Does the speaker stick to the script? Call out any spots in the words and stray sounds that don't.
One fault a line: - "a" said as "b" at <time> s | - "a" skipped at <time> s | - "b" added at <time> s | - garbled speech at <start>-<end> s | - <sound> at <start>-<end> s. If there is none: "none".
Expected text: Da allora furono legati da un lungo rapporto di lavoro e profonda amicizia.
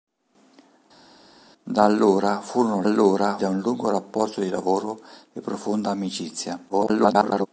- "legati" said as "allora" at 2.8 s
- garbled speech at 6.7-7.5 s